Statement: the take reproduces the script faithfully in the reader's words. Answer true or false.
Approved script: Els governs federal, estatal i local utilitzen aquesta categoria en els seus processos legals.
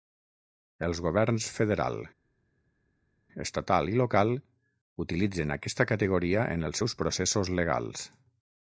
true